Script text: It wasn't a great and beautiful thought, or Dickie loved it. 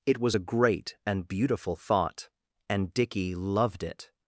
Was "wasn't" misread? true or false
true